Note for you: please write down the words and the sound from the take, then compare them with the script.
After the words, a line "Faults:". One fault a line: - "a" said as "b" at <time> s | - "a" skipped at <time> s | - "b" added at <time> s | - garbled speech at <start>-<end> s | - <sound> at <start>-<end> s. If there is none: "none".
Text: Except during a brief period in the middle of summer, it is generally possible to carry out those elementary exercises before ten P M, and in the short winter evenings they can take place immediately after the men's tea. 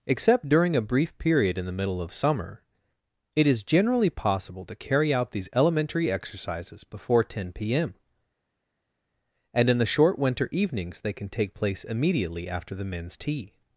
Except during a brief period in the middle of summer, it is generally possible to carry out these elementary exercises before ten P M, and in the short winter evenings they can take place immediately after the men's tea.
Faults:
- "those" said as "these" at 5.3 s